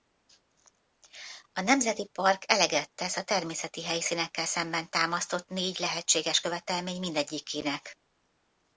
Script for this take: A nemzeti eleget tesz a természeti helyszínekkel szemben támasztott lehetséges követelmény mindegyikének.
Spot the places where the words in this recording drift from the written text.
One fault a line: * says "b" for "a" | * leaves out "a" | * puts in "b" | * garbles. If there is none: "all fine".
* puts in "park"
* puts in "négy"